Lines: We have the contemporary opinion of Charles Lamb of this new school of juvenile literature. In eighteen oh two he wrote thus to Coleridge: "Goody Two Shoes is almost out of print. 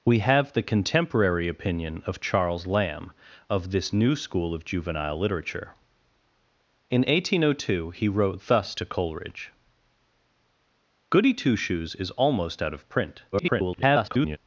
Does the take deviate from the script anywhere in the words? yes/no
yes